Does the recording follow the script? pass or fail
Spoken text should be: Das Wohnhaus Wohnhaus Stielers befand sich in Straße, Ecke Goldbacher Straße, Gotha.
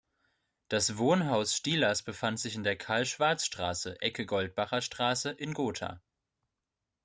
fail